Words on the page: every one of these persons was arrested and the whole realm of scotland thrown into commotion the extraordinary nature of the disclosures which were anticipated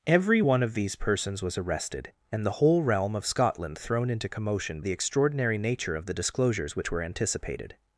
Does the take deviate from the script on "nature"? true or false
false